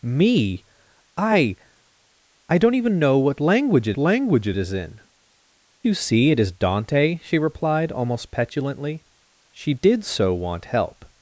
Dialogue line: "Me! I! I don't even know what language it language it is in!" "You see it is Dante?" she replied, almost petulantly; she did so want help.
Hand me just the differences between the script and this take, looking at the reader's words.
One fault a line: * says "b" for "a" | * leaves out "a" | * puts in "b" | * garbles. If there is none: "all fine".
all fine